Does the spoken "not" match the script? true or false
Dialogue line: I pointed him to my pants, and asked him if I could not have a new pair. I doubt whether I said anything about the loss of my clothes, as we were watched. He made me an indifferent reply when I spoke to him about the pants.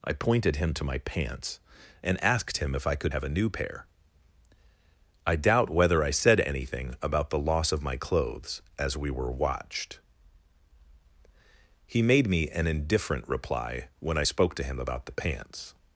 false